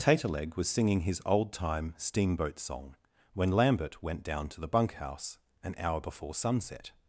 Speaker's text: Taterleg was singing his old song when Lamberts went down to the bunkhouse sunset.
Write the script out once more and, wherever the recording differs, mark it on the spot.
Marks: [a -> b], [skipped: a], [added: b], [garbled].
Taterleg was singing his old [added: time steamboat] song when [Lamberts -> Lambert] went down to the bunkhouse [added: an hour before] sunset.